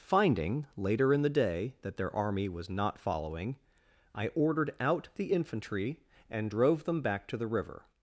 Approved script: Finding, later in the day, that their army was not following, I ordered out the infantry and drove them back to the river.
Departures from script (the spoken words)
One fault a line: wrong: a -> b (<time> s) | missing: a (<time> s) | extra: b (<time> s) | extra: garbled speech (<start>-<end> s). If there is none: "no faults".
no faults